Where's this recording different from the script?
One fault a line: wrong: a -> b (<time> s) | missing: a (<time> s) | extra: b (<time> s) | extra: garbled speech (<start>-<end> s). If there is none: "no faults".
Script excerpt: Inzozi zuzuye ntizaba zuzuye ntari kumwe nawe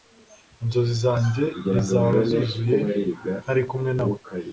wrong: zuzuye -> zanjye (1.0 s)